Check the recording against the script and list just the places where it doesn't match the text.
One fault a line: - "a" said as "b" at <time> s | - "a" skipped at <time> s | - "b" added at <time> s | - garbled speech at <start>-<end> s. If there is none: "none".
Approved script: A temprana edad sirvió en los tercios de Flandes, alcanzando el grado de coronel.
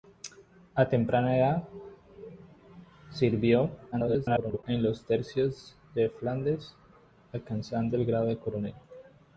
- garbled speech at 3.9-4.6 s